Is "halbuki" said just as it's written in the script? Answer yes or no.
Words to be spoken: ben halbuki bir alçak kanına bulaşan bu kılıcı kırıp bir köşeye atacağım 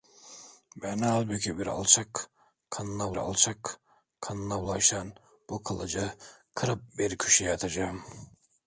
yes